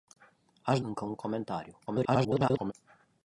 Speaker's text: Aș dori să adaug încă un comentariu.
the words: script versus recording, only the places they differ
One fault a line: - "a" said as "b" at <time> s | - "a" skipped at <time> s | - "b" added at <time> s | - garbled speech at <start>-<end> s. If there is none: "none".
- "dori să adaug" skipped at 0.8 s
- garbled speech at 1.9-2.7 s